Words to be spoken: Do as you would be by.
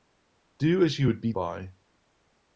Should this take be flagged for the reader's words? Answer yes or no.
no